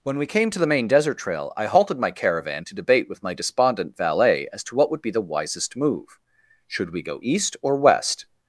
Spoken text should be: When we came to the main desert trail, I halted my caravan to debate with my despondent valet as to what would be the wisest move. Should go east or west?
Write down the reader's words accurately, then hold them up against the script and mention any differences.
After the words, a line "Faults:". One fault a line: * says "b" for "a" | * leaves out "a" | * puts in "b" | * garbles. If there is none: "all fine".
When we came to the main desert trail, I halted my caravan to debate with my despondent valet as to what would be the wisest move. Should we go east or west?
Faults:
* puts in "we"